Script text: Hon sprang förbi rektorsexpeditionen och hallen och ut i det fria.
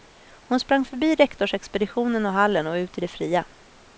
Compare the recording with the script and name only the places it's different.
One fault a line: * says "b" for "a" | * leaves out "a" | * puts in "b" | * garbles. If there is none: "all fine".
all fine